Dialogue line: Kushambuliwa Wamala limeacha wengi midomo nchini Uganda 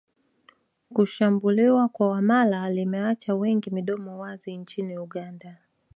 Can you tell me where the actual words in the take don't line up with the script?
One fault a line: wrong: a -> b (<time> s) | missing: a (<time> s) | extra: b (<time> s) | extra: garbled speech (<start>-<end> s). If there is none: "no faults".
extra: kwa (1.9 s)
extra: wazi (4.2 s)